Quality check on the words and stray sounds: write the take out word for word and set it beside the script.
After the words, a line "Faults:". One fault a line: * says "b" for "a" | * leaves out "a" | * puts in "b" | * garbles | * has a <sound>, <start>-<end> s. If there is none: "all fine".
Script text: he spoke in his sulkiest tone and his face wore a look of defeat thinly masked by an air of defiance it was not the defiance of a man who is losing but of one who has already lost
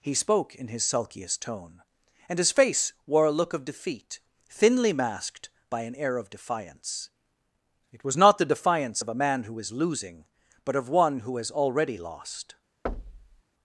he spoke in his sulkiest tone and his face wore a look of defeat thinly masked by an air of defiance it was not the defiance of a man who is losing but of one who has already lost
Faults:
* has a thud, 12.9-13.4 s